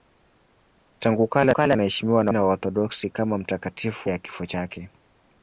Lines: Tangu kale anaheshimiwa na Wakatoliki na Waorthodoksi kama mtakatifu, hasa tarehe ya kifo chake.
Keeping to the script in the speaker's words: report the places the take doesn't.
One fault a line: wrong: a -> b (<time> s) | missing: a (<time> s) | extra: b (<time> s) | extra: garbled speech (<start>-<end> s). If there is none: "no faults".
extra: kale (1.5 s)
missing: Wakatoliki (2.3 s)
missing: hasa tarehe (4.1 s)